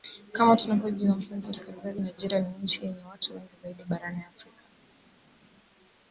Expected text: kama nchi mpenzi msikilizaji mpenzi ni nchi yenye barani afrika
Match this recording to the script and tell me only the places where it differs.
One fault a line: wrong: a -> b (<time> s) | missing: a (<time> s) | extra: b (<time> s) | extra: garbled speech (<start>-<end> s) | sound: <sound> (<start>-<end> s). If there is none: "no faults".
wrong: nchi -> tunavyojua (0.6 s)
wrong: mpenzi -> nigeria (2.0 s)
extra: watu wengi zaidi (3.0 s)